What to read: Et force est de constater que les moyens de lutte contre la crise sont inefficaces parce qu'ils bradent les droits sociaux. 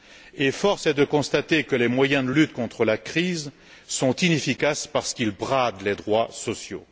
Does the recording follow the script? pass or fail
pass